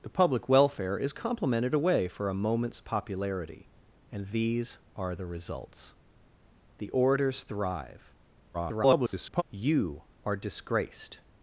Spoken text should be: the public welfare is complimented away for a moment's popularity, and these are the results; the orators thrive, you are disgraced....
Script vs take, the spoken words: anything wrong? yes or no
yes